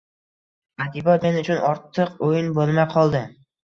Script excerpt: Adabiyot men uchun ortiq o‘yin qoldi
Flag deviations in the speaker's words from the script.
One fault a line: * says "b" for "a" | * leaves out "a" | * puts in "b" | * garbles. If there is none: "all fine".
* puts in "bo‘lmay"